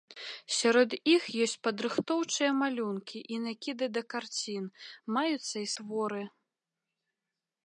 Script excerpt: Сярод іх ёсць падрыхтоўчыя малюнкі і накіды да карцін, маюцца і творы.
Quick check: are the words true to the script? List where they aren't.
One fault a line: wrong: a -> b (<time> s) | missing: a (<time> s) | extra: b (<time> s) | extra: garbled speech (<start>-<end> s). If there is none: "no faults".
no faults